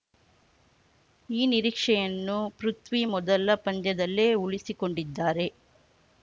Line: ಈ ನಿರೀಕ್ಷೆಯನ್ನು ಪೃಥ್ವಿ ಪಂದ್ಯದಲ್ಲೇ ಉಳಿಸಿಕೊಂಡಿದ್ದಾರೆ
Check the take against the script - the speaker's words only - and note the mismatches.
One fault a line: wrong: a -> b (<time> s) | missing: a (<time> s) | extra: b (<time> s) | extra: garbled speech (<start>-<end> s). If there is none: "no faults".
extra: ಮೊದಲ (3.1 s)